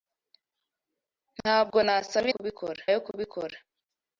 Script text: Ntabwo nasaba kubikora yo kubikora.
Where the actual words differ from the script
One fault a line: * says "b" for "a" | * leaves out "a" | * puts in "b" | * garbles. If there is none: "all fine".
all fine